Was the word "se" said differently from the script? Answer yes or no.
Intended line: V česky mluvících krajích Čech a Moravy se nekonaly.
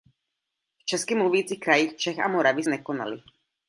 yes